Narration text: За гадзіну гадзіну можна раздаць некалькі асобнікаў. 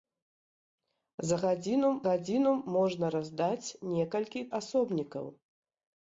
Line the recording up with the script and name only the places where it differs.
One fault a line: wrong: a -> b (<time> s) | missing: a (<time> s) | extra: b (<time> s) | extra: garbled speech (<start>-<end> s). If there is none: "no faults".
no faults